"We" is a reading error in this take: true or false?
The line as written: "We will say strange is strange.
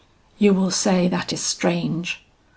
true